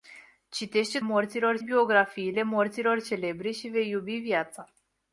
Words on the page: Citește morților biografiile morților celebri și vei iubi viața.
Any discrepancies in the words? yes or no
no